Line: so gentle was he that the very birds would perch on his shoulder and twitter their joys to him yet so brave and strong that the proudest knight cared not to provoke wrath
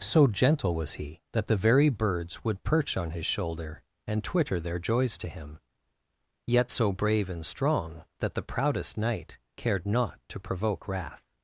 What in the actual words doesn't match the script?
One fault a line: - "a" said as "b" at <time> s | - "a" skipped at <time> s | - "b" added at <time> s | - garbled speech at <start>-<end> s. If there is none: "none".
none